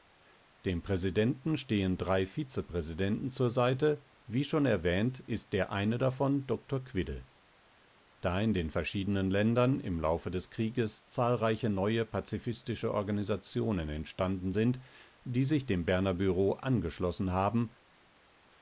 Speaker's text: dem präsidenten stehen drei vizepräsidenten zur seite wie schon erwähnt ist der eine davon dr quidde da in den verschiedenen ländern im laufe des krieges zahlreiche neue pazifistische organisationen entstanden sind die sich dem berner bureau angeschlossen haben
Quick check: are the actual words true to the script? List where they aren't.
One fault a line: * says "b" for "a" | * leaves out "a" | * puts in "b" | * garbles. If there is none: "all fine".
all fine